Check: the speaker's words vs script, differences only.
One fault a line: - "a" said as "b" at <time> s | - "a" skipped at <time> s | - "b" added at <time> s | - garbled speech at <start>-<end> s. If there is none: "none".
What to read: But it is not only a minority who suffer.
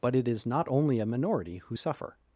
none